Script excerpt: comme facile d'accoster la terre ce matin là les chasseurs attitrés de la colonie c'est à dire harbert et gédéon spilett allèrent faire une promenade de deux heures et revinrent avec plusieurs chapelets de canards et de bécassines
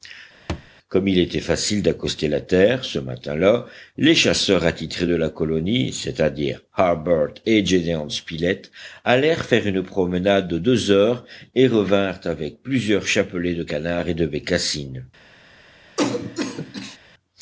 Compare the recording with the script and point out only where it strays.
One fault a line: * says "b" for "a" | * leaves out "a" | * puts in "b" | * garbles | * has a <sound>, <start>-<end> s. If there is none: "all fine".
* has a thud, 0.5-0.7 s
* puts in "il était"
* has a cough, 16.0-17.0 s